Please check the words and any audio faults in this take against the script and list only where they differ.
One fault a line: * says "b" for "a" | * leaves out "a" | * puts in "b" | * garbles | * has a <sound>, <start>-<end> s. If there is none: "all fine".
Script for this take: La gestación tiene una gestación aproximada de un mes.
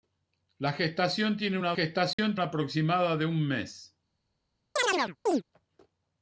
* has a dropout, 2.1-2.2 s
* has a chirp, 4.8-5.4 s